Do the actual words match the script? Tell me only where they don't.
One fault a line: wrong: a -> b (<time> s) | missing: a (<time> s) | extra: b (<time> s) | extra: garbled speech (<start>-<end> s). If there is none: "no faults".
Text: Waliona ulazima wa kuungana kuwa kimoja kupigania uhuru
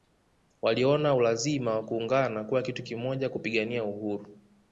extra: kitu (2.6 s)